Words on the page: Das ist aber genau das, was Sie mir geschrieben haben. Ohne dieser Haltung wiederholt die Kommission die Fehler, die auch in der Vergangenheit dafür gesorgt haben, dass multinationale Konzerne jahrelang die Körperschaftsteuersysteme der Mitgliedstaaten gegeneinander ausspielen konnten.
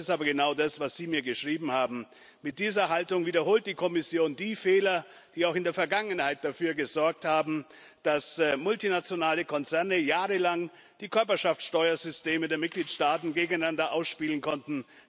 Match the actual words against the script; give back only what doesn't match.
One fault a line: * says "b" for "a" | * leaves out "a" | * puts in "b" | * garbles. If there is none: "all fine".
* says "Mit" for "Ohne"